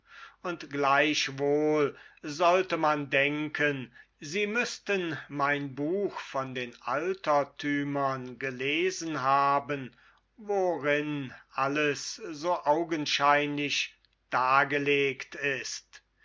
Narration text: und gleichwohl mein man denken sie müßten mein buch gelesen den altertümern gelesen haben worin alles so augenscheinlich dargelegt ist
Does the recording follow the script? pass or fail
fail